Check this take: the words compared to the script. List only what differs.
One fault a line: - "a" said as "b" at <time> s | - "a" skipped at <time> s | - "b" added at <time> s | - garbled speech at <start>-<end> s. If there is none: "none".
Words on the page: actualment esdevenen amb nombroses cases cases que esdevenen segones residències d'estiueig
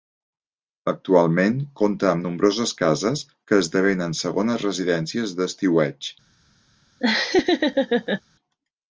- "esdevenen" said as "compta" at 1.8 s
- "cases" skipped at 3.2 s